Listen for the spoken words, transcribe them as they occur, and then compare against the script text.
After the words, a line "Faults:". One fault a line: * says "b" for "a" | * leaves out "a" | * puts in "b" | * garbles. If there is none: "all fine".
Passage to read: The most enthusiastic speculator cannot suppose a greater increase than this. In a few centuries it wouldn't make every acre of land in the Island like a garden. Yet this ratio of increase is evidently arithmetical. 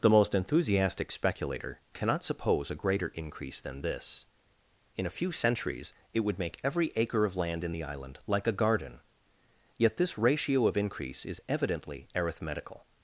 The most enthusiastic speculator cannot suppose a greater increase than this. In a few centuries it would make every acre of land in the Island like a garden. Yet this ratio of increase is evidently arithmetical.
Faults:
* says "would" for "wouldn't"